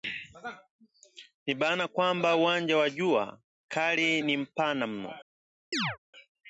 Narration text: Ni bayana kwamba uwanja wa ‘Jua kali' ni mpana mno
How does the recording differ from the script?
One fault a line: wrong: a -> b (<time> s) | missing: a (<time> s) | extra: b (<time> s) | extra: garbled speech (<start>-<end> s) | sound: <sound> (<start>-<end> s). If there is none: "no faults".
sound: chirp (5.7-6.0 s)